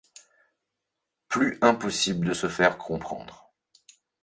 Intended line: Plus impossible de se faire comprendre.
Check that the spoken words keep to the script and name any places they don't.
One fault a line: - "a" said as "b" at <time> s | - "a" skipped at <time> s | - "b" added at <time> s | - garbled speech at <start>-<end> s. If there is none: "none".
none